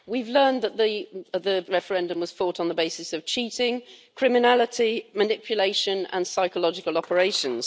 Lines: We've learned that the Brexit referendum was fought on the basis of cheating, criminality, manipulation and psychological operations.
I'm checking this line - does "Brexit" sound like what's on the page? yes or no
no